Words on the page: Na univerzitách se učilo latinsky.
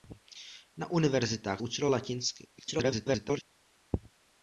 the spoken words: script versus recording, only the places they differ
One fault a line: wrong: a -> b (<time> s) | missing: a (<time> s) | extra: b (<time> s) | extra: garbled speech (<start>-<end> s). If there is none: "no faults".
missing: se (1.6 s)
extra: garbled speech (2.6-3.4 s)